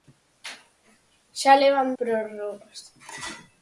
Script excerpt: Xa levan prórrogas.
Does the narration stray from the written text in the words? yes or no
no